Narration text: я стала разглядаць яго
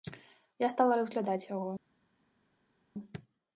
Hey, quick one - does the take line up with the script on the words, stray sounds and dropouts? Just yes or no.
yes